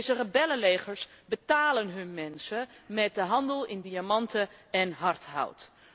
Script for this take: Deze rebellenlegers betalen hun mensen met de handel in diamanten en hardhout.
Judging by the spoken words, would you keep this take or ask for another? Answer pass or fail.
pass